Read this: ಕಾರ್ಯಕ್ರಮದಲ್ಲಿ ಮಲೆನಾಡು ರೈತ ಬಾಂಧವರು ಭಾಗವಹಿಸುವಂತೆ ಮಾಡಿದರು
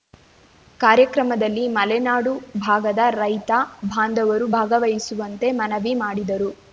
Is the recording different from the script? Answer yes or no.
yes